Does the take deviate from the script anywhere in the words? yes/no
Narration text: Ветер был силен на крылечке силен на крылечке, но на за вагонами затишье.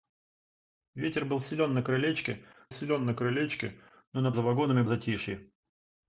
no